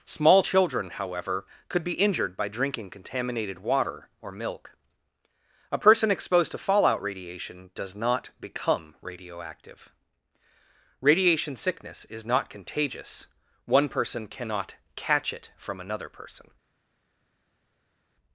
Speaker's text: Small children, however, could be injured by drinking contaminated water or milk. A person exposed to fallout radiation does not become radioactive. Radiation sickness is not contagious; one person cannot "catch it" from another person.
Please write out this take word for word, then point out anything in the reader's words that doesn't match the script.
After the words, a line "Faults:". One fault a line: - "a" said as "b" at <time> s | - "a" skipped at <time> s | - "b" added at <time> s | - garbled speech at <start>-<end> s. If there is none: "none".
Small children, however, could be injured by drinking contaminated water or milk. A person exposed to fallout radiation does not become radioactive. Radiation sickness is not contagious; one person cannot "catch it" from another person.
Faults:
none